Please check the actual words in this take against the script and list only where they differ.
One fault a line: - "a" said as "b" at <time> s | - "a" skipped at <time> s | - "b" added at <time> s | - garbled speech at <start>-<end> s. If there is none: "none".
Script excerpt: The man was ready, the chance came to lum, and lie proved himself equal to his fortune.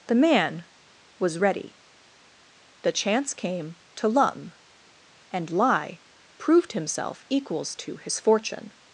- "equal" said as "equals" at 7.3 s